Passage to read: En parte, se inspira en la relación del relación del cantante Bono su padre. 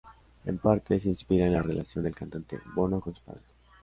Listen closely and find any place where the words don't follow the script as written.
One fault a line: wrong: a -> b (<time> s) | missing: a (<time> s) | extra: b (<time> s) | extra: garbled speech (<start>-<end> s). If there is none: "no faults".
missing: relación del (2.1 s)
extra: con (3.0 s)